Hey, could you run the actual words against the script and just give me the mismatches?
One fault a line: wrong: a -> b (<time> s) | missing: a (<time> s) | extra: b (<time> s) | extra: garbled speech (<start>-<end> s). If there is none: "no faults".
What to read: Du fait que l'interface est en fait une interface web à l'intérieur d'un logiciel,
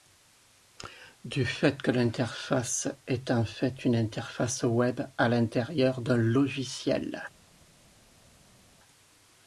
no faults